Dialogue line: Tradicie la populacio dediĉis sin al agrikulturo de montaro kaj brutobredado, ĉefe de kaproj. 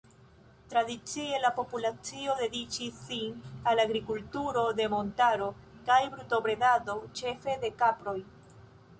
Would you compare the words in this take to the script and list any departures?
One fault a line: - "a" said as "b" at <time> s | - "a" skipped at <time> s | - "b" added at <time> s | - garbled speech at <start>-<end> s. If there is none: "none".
none